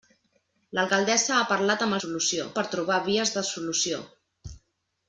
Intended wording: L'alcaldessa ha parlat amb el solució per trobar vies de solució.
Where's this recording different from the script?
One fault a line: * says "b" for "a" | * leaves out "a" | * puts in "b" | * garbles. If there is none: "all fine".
all fine